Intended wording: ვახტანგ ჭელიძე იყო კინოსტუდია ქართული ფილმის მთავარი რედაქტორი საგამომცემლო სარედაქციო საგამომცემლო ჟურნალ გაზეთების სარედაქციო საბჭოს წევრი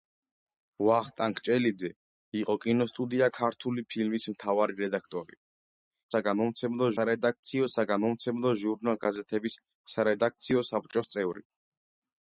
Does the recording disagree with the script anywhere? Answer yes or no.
no